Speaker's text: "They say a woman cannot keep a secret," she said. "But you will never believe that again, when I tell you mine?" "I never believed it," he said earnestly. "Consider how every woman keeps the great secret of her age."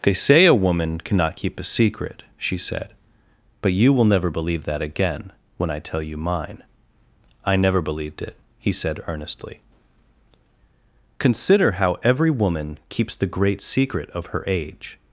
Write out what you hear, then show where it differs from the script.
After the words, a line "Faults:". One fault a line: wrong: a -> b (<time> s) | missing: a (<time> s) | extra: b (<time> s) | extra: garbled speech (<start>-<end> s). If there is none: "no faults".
"They say a woman cannot keep a secret," she said. "But you will never believe that again, when I tell you mine?" "I never believed it," he said earnestly. "Consider how every woman keeps the great secret of her age."
Faults:
no faults